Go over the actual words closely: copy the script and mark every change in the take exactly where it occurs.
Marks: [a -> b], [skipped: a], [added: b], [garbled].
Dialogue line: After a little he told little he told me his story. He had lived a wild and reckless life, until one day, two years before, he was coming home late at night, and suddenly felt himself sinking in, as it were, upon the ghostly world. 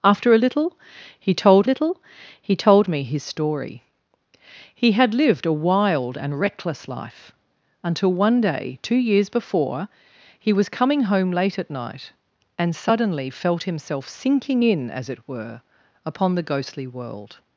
After a little he told little he told me his story. He had lived a wild and reckless life, until one day, two years before, he was coming home late at night, and suddenly felt himself sinking in, as it were, upon the ghostly world.